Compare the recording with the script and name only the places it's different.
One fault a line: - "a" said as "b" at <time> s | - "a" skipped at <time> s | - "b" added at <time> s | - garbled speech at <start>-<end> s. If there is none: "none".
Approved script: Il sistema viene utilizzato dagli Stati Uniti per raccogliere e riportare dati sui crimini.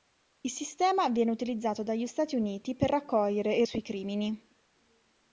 - "riportare dati" skipped at 3.6 s